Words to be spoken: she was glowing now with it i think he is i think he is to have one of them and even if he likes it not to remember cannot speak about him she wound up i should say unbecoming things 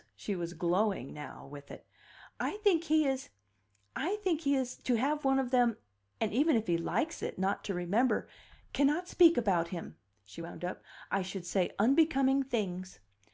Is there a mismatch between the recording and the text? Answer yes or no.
no